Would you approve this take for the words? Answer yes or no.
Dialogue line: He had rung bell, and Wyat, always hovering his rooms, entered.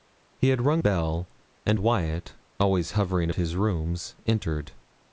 yes